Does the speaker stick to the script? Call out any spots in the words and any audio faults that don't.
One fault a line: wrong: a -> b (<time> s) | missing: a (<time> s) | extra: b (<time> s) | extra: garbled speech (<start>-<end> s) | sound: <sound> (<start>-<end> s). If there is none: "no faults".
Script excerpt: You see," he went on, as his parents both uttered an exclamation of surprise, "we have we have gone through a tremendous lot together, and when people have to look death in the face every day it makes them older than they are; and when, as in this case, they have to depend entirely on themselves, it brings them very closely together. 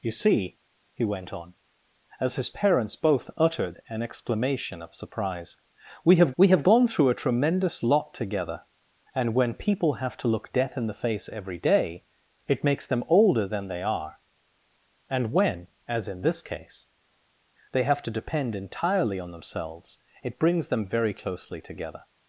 no faults